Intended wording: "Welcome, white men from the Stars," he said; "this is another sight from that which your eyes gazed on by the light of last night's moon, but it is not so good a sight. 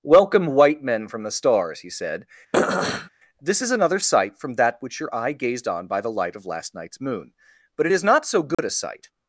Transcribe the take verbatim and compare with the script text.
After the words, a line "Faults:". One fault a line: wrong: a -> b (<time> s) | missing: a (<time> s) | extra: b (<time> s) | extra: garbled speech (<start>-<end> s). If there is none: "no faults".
"Welcome, white men from the Stars," he said; "this is another sight from that which your eye gazed on by the light of last night's moon, but it is not so good a sight.
Faults:
wrong: eyes -> eye (5.1 s)